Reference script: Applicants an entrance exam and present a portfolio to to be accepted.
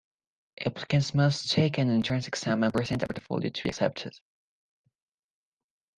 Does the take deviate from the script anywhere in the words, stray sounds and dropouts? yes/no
yes